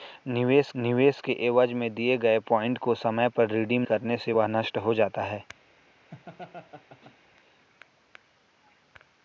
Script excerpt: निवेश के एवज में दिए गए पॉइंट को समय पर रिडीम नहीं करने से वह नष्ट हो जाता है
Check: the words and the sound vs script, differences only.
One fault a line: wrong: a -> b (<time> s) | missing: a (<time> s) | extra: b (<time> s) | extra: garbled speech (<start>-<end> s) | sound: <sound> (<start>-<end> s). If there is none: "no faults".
extra: निवेश (0.8 s)
missing: नहीं (3.8 s)
sound: laugh (6.1-7.2 s)